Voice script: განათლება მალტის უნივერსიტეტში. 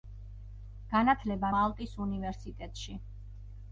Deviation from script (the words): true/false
false